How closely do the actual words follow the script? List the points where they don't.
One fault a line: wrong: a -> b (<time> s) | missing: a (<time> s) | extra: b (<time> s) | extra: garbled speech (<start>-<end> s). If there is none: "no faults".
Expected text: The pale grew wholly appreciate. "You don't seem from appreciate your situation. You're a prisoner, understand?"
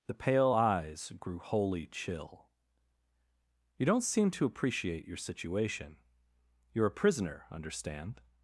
extra: eyes (0.5 s)
wrong: appreciate -> chill (1.9 s)
wrong: from -> to (4.3 s)